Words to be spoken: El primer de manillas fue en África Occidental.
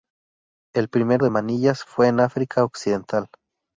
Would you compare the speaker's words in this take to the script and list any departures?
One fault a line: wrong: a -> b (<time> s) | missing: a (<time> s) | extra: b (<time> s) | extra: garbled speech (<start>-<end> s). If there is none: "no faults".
no faults